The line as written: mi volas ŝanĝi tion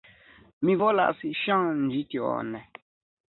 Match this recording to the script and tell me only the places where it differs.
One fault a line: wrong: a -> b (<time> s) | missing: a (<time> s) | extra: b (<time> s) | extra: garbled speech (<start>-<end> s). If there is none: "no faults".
no faults